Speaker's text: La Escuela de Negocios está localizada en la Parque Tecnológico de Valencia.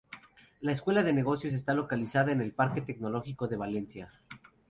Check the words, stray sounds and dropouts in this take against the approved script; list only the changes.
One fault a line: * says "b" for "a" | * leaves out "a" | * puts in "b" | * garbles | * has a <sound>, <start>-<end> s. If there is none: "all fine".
* says "el" for "la"